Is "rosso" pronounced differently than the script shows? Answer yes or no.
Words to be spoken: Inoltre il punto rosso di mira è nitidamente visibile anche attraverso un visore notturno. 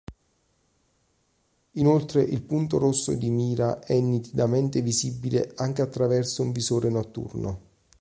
no